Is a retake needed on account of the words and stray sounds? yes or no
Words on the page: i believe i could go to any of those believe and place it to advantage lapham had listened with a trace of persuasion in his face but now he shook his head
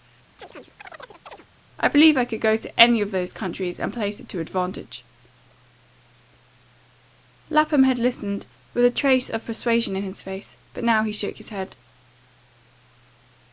yes